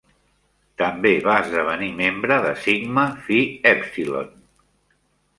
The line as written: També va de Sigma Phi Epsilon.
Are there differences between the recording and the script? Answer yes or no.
yes